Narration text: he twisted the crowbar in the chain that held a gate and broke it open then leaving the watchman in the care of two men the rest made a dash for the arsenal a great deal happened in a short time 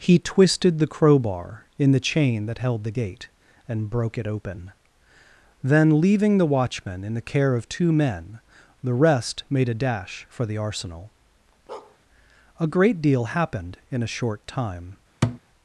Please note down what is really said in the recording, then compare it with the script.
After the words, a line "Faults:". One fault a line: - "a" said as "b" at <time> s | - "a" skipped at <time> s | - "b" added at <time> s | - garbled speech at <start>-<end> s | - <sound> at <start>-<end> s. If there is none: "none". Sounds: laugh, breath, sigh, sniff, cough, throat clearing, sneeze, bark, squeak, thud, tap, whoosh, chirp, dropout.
he twisted the crowbar in the chain that held the gate and broke it open then leaving the watchman in the care of two men the rest made a dash for the arsenal a great deal happened in a short time
Faults:
- "a" said as "the" at 2.9 s
- bark at 11.7-12.0 s
- thud at 15.2-15.4 s